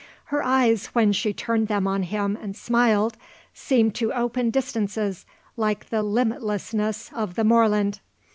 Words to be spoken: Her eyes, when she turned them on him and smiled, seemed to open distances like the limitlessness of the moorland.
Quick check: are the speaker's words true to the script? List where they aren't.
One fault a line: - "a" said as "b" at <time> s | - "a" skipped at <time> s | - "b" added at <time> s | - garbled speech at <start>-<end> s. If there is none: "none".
none